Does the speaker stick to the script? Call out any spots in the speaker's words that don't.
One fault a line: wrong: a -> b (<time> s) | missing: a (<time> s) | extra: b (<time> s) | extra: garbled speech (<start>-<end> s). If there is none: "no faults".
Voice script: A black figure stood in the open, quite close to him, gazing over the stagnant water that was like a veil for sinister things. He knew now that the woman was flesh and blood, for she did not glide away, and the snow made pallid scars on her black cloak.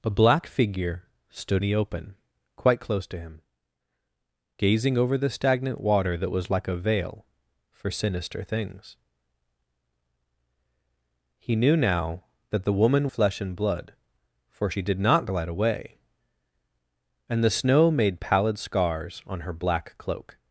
missing: in (1.6 s)
missing: was (13.1 s)